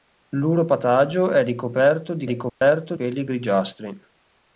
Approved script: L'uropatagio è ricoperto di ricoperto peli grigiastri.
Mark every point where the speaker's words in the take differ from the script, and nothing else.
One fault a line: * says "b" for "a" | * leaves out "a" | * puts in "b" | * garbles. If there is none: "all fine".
all fine